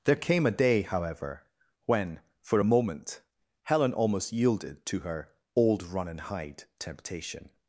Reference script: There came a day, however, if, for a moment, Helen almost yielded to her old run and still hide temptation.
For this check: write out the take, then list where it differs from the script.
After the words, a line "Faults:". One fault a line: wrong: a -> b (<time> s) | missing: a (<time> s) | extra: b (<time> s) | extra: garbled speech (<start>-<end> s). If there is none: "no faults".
There came a day, however, when, for a moment, Helen almost yielded to her old run and hide temptation.
Faults:
wrong: if -> when (1.9 s)
missing: still (6.2 s)